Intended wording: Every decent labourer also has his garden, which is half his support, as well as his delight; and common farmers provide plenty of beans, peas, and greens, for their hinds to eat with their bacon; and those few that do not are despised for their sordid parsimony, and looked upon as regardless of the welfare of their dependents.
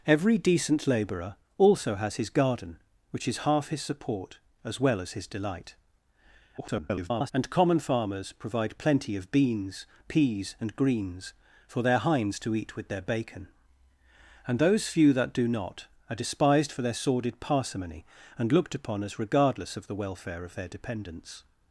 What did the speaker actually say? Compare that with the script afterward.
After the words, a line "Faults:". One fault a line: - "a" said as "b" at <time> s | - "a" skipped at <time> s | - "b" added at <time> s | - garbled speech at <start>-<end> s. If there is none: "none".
Every decent labourer also has his garden, which is half his support, as well as his delight; [garbled] and common farmers provide plenty of beans, peas, and greens, for their hinds to eat with their bacon; and those few that do not are despised for their sordid parsimony, and looked upon as regardless of the welfare of their dependents.
Faults:
- garbled speech at 6.6-7.3 s